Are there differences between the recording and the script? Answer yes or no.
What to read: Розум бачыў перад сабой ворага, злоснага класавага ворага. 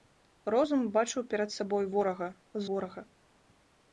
yes